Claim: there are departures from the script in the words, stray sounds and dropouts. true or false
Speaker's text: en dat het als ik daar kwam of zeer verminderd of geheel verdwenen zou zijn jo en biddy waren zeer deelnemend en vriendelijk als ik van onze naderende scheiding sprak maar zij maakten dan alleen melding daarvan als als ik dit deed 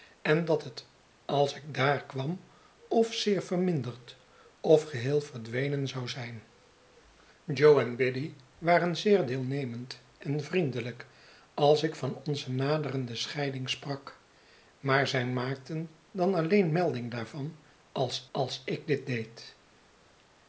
false